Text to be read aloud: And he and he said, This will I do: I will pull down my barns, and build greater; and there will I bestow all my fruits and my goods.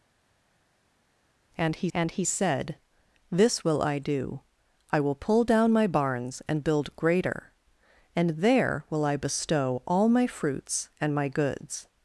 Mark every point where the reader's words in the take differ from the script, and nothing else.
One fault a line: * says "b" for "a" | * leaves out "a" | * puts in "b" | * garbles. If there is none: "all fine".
all fine